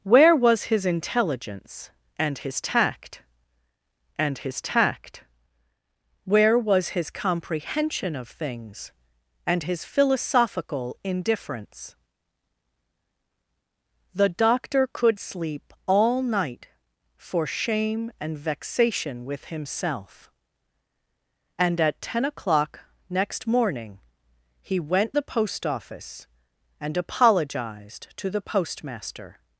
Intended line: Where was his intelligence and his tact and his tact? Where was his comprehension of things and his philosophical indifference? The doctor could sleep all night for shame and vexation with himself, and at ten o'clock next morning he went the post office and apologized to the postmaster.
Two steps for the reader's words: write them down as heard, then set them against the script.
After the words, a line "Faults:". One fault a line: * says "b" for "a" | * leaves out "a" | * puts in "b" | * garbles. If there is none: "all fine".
Where was his intelligence and his tact and his tact? Where was his comprehension of things and his philosophical indifference? The doctor could sleep all night for shame and vexation with himself, and at ten o'clock next morning he went the post office and apologized to the postmaster.
Faults:
all fine